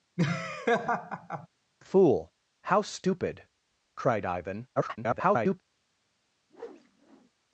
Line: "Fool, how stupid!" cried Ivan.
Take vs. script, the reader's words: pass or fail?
fail